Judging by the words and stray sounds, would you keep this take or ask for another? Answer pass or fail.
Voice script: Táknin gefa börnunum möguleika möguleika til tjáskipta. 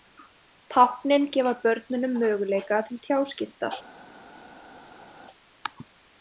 fail